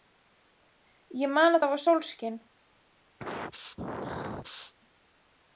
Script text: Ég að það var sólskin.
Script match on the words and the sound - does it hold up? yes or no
no